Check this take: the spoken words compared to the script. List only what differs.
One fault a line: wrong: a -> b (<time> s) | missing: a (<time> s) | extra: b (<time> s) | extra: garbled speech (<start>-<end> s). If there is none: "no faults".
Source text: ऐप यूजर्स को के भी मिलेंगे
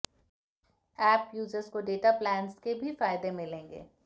extra: डेटा प्लान्स (1.8 s)
extra: फायदे (3.0 s)